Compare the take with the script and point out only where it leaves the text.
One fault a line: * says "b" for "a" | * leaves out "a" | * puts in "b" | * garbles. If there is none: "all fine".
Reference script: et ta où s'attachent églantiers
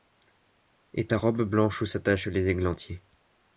* puts in "robe blanche"
* puts in "les"